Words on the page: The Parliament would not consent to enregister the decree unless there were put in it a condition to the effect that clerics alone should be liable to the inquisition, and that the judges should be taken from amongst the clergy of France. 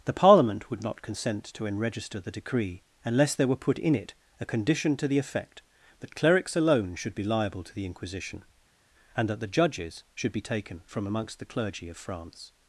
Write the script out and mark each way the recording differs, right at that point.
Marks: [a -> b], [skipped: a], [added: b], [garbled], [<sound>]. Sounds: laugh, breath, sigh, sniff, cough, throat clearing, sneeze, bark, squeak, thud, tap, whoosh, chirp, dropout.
The Parliament would not consent to enregister the decree unless there were put in it a condition to the effect that clerics alone should be liable to the inquisition, and that the judges should be taken from amongst the clergy of France.